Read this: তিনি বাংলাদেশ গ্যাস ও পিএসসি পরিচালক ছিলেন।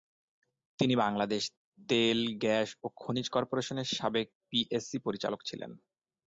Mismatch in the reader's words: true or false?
true